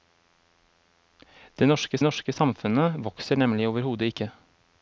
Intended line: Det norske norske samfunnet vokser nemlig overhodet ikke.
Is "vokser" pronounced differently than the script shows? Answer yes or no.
no